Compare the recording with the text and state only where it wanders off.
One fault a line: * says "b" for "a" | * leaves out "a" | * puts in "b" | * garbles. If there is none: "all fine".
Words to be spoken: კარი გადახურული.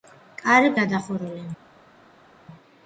all fine